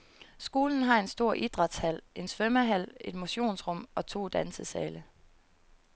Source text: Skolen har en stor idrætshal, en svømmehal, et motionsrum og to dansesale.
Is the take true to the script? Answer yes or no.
yes